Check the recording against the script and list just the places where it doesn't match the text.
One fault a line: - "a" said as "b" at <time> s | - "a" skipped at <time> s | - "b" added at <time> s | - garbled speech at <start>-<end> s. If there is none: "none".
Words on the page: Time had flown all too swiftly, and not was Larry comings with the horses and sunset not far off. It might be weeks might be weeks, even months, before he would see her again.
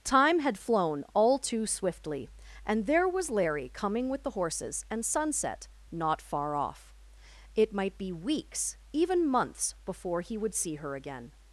- "not" said as "there" at 2.9 s
- "comings" said as "coming" at 3.7 s
- "might be weeks" skipped at 8.8 s